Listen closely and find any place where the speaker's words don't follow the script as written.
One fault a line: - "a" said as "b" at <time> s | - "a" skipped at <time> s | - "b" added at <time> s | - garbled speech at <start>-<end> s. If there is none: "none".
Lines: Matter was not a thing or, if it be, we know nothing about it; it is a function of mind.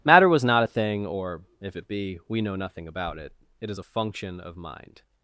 none